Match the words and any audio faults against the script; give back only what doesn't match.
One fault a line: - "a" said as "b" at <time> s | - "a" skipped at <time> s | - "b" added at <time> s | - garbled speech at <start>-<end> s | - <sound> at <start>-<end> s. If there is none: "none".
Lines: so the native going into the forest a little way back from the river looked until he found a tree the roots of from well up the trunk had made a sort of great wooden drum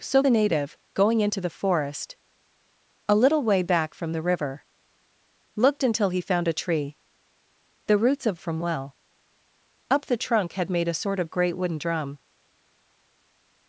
none